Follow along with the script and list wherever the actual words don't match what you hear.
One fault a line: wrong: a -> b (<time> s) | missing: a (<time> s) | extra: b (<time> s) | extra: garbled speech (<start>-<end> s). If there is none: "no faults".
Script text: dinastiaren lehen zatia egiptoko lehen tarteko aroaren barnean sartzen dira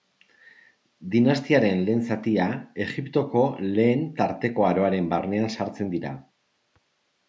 no faults